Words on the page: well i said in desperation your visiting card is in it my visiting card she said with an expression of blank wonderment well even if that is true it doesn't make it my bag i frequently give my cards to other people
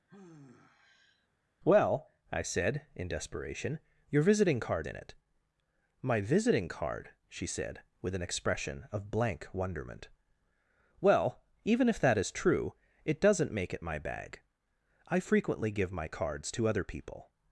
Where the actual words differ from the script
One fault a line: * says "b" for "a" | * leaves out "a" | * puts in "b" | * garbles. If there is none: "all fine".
* leaves out "is"